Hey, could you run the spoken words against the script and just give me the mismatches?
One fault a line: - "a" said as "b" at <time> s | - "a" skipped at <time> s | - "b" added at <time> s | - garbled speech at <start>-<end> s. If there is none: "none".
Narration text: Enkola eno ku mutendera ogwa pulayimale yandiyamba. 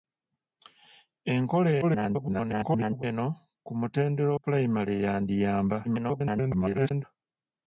- garbled speech at 1.8-3.0 s
- "ogwa" skipped at 4.3 s
- garbled speech at 5.8-7.0 s